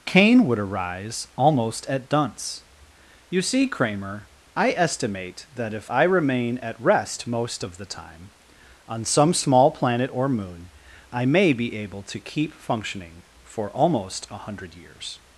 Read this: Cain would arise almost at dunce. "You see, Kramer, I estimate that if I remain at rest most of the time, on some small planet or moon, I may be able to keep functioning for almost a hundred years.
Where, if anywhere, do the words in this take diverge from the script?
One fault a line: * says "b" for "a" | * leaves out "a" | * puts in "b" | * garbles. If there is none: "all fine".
all fine